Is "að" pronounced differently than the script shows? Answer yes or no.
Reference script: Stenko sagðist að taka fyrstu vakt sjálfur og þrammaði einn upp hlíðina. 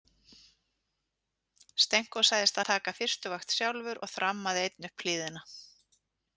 no